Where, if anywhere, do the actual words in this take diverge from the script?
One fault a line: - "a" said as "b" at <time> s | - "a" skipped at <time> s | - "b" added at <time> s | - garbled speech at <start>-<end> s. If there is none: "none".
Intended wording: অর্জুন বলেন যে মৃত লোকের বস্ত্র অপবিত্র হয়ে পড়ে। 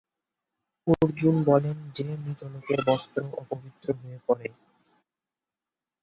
none